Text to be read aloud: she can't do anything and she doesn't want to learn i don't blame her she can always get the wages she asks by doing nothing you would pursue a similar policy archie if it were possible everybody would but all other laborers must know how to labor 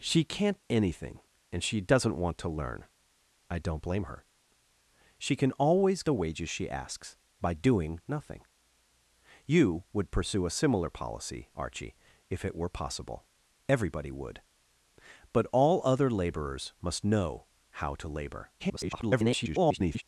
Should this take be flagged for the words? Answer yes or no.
yes